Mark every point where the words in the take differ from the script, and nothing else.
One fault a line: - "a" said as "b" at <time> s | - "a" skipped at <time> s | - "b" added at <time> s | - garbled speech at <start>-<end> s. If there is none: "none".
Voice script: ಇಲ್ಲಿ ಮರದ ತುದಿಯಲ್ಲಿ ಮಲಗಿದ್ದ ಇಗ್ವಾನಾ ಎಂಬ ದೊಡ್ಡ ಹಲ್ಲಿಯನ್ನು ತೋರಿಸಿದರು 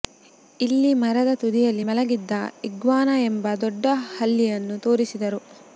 none